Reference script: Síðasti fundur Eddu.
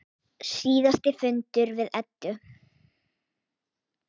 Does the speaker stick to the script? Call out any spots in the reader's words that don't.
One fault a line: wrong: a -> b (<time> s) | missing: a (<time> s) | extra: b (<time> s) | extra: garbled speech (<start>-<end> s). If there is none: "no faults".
extra: við (1.8 s)